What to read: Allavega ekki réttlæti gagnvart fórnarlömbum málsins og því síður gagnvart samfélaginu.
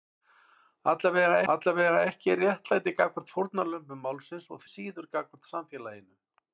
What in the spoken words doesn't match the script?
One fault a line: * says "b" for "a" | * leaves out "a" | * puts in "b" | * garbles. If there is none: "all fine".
* puts in "allavega"
* leaves out "því"